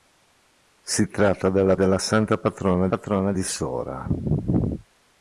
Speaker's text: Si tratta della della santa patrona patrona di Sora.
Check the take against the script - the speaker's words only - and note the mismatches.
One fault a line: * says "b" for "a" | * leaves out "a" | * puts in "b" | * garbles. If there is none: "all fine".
all fine